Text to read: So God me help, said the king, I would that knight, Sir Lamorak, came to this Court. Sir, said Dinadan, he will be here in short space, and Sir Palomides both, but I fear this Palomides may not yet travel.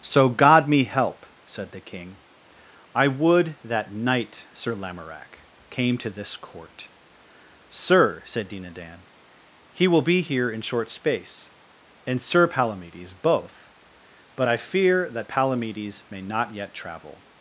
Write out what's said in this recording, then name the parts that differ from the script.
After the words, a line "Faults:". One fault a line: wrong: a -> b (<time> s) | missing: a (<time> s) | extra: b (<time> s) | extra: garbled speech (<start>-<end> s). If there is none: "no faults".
So God me help, said the king, I would that knight, Sir Lamorak, came to this Court. Sir, said Dinadan, he will be here in short space, and Sir Palomides both, but I fear that Palomides may not yet travel.
Faults:
wrong: this -> that (15.1 s)